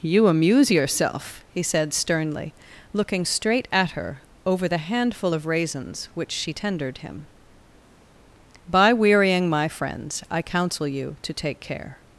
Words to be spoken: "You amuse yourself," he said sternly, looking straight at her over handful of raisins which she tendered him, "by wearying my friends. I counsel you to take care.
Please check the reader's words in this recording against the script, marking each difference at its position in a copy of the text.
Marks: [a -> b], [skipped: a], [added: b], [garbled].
"You amuse yourself," he said sternly, looking straight at her over [added: the] handful of raisins which she tendered him, "by wearying my friends. I counsel you to take care.